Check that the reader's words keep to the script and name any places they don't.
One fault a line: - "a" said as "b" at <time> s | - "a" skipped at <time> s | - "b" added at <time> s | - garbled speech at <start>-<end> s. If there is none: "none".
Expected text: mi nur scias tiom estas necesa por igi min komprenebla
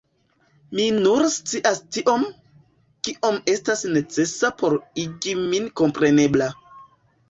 - "kiom" added at 3.1 s